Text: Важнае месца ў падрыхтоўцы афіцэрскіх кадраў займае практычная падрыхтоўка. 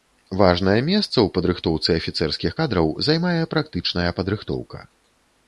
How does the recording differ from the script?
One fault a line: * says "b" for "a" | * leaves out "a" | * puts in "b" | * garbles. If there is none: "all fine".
all fine